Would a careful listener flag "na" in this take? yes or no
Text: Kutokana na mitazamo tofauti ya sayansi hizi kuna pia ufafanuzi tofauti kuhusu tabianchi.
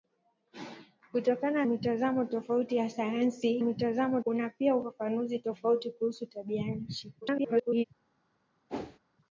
yes